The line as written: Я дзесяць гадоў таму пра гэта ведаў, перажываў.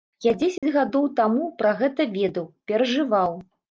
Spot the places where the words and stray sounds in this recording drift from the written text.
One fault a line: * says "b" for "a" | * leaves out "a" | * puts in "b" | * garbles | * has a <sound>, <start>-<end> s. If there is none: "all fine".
* has a dropout, 0.6-0.6 s